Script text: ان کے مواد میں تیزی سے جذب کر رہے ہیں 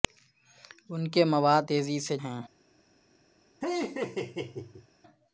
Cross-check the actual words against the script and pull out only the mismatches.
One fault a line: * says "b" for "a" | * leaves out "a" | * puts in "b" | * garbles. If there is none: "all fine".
* leaves out "میں"
* leaves out "جذب کر رہے"